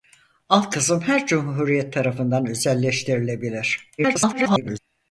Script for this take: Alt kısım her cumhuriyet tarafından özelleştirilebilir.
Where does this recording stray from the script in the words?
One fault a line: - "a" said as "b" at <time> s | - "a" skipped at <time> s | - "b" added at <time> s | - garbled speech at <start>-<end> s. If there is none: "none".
- garbled speech at 4.0-4.8 s